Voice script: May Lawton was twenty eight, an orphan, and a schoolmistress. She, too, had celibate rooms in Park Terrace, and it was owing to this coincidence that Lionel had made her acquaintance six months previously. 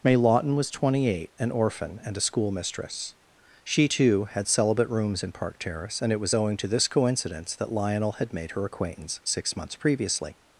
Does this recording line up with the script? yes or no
yes